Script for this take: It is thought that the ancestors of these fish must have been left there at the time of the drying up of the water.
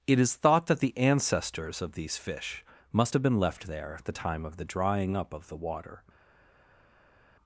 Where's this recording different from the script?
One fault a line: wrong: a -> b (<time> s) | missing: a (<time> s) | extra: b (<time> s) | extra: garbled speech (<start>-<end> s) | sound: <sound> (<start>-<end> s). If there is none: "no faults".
no faults